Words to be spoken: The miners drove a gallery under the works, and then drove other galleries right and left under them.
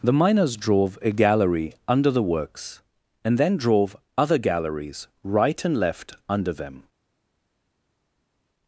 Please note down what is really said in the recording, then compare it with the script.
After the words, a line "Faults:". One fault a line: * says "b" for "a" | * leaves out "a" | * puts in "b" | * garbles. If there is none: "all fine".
The miners drove a gallery under the works, and then drove other galleries right and left under them.
Faults:
all fine